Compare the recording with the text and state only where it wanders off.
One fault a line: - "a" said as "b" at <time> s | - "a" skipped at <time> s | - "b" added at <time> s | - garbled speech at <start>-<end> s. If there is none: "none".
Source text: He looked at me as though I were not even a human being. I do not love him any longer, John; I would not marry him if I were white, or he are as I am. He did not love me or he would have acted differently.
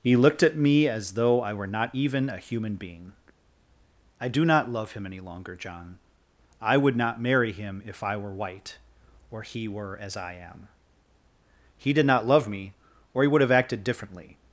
- "are" said as "were" at 9.7 s